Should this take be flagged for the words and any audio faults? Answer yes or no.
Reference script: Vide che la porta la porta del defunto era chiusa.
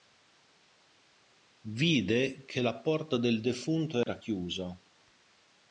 yes